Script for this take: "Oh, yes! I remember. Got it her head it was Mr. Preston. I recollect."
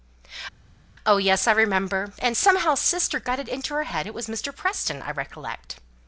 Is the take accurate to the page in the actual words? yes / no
no